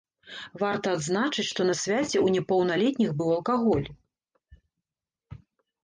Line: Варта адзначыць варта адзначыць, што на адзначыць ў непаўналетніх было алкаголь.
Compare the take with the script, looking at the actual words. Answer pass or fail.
fail